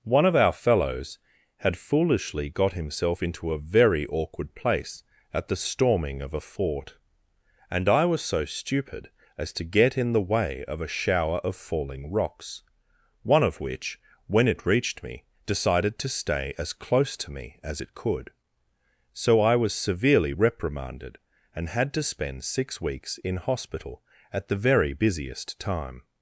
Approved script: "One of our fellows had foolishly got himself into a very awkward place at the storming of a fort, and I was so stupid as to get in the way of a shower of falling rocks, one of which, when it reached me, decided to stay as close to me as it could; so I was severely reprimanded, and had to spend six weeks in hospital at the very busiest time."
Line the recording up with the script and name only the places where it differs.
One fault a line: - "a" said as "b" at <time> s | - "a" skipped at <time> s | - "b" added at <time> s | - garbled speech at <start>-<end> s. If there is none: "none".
none